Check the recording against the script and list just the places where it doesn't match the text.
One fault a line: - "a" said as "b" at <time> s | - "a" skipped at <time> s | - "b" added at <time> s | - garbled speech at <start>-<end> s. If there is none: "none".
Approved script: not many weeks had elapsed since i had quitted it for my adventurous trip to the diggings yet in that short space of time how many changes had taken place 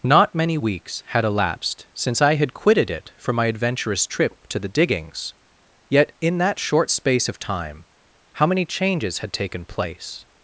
none